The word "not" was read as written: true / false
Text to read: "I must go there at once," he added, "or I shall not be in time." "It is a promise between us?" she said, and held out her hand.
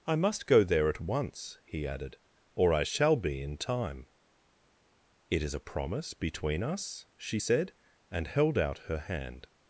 false